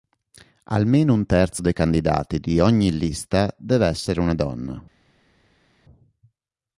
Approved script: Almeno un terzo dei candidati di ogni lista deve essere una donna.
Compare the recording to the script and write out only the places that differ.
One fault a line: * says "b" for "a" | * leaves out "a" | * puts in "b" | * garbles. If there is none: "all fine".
all fine